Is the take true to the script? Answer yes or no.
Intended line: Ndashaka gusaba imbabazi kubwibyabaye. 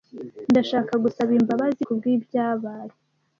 yes